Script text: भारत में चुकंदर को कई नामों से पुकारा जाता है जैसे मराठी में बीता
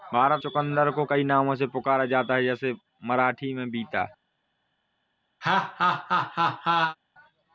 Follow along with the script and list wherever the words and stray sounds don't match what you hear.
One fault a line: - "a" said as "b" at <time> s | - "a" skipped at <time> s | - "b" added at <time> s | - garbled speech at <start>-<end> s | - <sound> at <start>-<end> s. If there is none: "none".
- "में" skipped at 0.4 s
- laugh at 5.4-7.0 s